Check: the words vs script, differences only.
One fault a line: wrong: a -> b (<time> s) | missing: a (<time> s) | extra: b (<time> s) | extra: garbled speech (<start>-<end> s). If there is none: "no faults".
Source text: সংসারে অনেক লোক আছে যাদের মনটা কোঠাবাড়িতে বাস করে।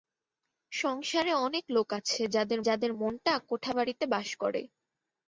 extra: যাদের (2.7 s)